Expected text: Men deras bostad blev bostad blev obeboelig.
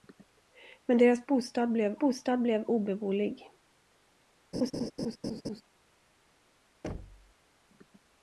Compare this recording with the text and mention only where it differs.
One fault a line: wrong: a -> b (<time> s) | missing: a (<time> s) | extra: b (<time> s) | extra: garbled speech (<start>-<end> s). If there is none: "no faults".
no faults